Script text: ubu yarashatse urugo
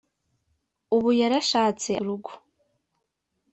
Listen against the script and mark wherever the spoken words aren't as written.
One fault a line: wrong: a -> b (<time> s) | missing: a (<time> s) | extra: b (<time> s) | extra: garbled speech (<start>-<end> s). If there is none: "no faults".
no faults